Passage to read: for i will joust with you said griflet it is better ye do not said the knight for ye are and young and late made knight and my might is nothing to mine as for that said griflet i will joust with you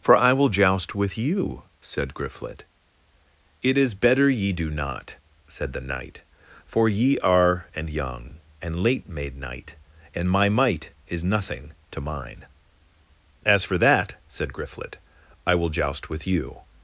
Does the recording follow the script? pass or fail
pass